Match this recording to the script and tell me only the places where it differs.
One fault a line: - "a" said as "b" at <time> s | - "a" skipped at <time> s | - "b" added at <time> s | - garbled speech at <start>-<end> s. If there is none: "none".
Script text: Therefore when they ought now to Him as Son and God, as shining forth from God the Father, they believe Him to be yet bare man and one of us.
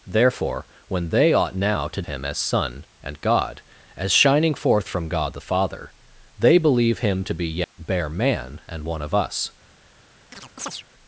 none